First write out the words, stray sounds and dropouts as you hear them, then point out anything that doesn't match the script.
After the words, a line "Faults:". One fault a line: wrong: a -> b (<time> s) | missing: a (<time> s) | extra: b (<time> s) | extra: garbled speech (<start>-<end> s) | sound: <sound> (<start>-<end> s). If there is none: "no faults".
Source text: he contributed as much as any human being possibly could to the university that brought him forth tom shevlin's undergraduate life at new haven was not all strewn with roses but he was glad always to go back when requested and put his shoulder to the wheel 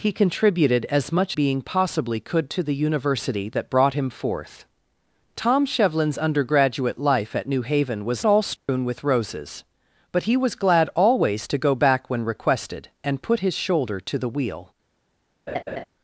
he contributed as much being possibly could to the university that brought him forth tom shevlin's undergraduate life at new haven was all strewn with roses but he was glad always to go back when requested and put his shoulder to the wheel
Faults:
missing: as any human (1.4 s)
missing: not (8.2 s)
sound: dropout (8.6-8.7 s)
sound: laugh (15.5-15.8 s)